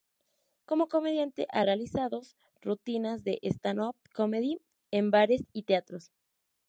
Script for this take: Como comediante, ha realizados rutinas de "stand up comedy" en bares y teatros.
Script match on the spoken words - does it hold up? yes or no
yes